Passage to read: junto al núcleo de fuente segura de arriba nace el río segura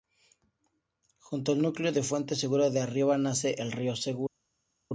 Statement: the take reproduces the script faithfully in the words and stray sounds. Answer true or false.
true